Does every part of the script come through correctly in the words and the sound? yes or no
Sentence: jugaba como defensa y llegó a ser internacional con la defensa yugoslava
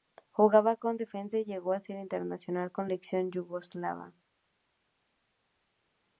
no